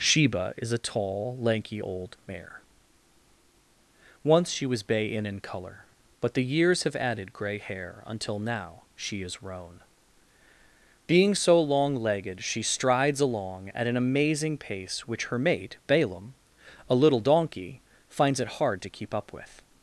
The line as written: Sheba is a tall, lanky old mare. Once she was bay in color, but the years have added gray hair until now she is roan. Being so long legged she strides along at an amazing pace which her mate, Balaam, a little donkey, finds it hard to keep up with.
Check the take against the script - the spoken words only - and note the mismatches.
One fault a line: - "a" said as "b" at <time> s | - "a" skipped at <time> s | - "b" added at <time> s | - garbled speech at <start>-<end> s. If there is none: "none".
- "in" added at 5.3 s